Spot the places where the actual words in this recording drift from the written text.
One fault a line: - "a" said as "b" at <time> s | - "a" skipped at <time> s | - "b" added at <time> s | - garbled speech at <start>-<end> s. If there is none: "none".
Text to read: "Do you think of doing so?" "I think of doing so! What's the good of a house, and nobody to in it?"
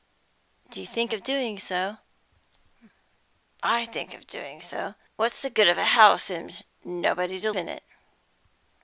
none